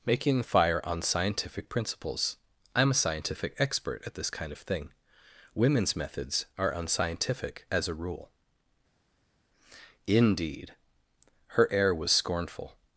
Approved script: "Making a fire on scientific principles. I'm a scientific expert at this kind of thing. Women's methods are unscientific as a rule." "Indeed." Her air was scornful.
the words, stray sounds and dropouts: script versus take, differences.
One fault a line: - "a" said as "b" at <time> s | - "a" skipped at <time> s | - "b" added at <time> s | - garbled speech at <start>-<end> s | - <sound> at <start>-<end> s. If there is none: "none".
- "a" skipped at 0.4 s